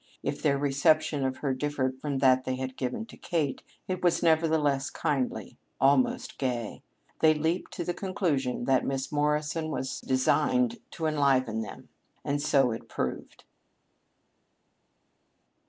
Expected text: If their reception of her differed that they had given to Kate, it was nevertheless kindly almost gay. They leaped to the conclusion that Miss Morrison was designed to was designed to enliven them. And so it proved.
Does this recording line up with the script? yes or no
no